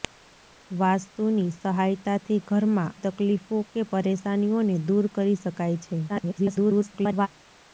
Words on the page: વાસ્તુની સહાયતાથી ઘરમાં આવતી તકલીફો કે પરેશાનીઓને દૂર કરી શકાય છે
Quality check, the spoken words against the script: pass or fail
fail